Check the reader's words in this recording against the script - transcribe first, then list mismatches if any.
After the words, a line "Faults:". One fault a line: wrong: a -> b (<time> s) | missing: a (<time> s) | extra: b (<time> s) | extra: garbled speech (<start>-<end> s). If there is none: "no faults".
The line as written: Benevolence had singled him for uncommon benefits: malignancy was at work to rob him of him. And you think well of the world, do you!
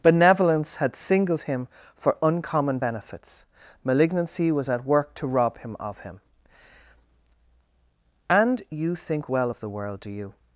Benevolence had singled him for uncommon benefits: malignancy was at work to rob him of him. And you think well of the world, do you!
Faults:
no faults